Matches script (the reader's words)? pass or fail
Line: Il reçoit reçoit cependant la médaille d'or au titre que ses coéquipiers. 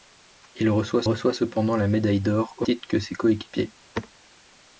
pass